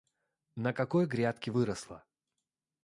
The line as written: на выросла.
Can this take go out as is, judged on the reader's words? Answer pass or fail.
fail